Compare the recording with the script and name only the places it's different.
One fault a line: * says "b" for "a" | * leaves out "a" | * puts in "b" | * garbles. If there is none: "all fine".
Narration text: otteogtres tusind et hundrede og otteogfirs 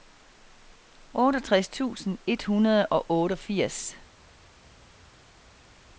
all fine